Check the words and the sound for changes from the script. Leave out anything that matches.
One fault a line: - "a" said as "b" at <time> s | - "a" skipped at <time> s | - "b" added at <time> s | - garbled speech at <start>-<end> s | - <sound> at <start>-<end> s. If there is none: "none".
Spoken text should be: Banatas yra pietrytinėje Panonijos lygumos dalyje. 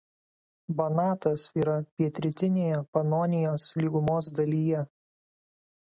none